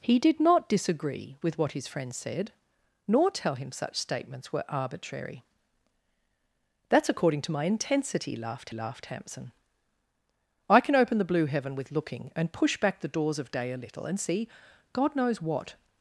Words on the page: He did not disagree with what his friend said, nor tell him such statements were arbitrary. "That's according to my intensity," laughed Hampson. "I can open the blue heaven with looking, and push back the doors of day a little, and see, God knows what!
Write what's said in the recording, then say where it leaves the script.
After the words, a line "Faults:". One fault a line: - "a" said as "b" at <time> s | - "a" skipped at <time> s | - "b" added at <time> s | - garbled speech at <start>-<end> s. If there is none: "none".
He did not disagree with what his friend said, nor tell him such statements were arbitrary. "That's according to my intensity," laughed laughed Hampson. "I can open the blue heaven with looking, and push back the doors of day a little, and see, God knows what!
Faults:
- "laughed" added at 8.7 s